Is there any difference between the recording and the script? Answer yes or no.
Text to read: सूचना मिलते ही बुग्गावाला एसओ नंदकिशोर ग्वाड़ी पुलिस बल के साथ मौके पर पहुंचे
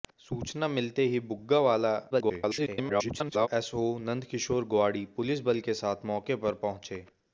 yes